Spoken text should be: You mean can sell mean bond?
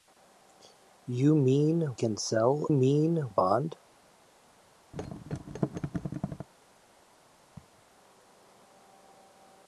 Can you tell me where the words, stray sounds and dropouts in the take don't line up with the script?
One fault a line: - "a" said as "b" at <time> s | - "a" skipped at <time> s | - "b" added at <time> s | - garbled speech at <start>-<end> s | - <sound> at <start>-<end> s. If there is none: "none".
- thud at 4.9-6.5 s
- laugh at 7.6-7.8 s